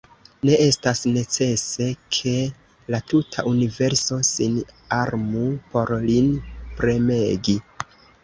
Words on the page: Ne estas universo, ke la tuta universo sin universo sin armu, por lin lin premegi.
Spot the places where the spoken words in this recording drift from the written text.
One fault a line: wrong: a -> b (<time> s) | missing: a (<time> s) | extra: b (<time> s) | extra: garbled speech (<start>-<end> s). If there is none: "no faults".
wrong: universo -> necese (1.2 s)
missing: universo sin (4.6 s)
missing: lin (6.3 s)